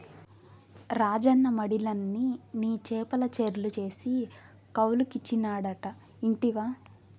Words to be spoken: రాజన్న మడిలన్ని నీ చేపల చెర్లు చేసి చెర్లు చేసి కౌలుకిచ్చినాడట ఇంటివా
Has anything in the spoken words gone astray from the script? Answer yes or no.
yes